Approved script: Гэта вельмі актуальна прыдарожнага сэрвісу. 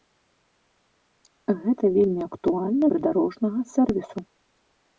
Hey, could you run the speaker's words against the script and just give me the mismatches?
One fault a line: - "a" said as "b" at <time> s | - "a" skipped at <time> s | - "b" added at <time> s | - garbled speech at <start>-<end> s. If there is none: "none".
none